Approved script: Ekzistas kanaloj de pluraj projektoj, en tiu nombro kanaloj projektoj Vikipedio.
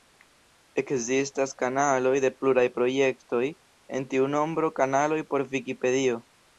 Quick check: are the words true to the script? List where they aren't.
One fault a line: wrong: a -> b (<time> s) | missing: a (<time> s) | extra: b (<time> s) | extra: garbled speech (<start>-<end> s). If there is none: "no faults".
wrong: projektoj -> por (5.3 s)